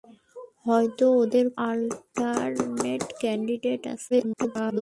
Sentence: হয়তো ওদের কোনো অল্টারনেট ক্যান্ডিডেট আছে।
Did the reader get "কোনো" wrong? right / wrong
wrong